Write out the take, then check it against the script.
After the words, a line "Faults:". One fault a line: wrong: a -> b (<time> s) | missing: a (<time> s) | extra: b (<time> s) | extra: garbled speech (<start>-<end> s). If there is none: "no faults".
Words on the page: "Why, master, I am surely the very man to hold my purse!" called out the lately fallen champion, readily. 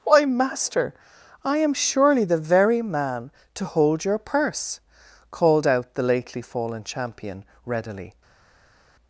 "Why, master, I am surely the very man to hold your purse!" called out the lately fallen champion, readily.
Faults:
wrong: my -> your (4.0 s)